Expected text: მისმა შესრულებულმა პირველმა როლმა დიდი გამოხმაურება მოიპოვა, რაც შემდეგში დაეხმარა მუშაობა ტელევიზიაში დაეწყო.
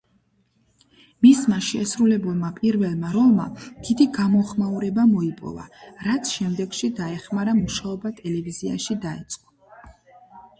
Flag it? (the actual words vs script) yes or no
no